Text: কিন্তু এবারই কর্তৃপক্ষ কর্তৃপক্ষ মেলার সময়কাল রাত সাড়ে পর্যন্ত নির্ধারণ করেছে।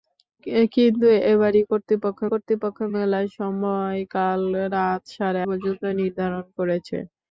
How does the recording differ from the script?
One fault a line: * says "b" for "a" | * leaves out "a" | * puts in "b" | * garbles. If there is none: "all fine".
all fine